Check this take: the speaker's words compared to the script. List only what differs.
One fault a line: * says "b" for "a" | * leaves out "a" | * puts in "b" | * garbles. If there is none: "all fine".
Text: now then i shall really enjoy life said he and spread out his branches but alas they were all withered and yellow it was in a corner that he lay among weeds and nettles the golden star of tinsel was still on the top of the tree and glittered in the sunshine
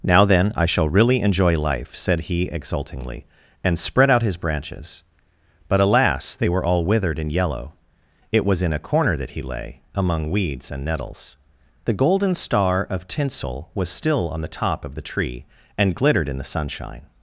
* puts in "exultingly"